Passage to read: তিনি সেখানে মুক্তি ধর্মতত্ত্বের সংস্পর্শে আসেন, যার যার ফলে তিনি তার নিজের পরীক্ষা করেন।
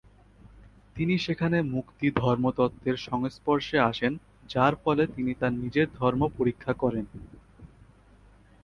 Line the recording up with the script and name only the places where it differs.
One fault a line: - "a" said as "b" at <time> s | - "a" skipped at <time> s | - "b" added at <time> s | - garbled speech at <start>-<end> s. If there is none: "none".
- "যার" skipped at 4.7 s
- "ধর্ম" added at 6.0 s